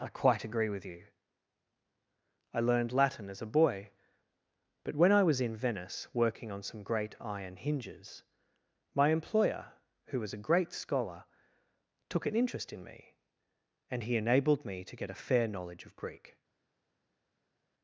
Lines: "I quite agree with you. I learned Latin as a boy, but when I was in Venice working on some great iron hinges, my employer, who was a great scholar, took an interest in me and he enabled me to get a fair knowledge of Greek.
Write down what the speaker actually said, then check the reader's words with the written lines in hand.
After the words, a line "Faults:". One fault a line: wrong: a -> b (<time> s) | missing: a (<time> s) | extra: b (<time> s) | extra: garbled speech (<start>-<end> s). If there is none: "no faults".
"I quite agree with you. I learned Latin as a boy, but when I was in Venice working on some great iron hinges, my employer, who was a great scholar, took an interest in me and he enabled me to get a fair knowledge of Greek.
Faults:
no faults